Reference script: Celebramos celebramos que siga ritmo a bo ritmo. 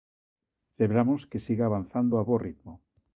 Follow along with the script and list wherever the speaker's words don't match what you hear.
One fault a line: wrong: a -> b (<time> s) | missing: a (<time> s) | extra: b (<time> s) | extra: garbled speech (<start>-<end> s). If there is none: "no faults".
missing: celebramos (1.2 s)
wrong: ritmo -> avanzando (1.7 s)